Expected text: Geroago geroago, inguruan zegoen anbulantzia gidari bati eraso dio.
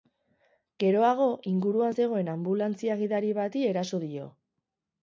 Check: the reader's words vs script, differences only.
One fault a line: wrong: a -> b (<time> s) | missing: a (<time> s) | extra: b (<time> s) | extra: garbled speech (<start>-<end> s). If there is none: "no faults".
missing: geroago (1.3 s)